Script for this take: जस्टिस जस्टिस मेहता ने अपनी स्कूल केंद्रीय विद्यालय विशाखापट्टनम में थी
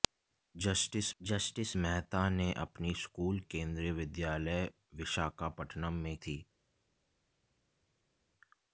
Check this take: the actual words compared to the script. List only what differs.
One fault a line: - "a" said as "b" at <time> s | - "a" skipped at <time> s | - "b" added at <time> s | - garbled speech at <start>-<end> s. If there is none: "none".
none